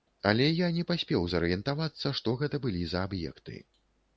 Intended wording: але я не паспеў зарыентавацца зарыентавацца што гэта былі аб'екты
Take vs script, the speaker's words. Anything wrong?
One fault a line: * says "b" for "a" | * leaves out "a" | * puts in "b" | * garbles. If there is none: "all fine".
* leaves out "зарыентавацца"
* puts in "за"